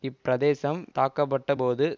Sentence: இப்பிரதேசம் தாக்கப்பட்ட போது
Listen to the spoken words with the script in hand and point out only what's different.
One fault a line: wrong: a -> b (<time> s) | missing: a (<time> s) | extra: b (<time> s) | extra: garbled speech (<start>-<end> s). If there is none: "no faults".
no faults